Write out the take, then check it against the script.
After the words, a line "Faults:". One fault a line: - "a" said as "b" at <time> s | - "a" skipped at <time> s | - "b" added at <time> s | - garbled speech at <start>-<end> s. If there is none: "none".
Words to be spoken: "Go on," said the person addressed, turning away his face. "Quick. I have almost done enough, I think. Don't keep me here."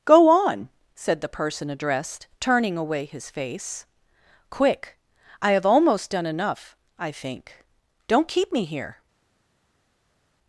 "Go on," said the person addressed, turning away his face. "Quick. I have almost done enough, I think. Don't keep me here."
Faults:
none